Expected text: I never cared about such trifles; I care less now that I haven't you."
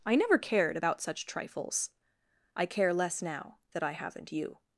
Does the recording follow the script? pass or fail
pass